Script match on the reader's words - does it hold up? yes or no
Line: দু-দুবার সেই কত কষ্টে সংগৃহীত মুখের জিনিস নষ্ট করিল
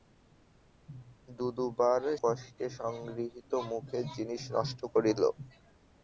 no